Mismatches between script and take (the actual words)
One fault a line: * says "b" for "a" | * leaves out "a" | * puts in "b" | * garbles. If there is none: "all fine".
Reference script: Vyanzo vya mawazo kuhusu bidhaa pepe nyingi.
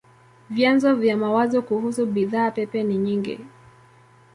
* puts in "ni"